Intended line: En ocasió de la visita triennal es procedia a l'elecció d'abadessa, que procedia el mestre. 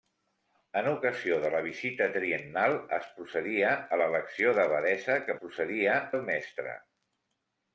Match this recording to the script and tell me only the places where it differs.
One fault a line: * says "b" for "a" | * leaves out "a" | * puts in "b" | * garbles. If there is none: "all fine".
all fine